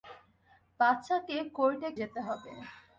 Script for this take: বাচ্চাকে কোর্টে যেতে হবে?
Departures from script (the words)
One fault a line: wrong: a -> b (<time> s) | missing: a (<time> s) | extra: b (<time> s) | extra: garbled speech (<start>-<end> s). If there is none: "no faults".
no faults